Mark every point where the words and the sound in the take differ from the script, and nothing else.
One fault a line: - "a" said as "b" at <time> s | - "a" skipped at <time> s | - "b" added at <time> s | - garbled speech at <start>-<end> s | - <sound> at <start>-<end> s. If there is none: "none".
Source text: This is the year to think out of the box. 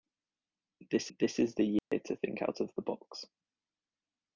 - "this" added at 1.2 s
- dropout at 1.8-1.9 s